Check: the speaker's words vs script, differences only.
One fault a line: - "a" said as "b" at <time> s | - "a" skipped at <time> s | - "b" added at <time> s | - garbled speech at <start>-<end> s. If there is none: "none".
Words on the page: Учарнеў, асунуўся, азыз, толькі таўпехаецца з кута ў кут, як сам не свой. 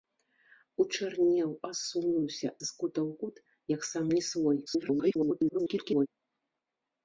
- "азыз толькі таўпехаецца" skipped at 2.5 s
- garbled speech at 4.7-6.1 s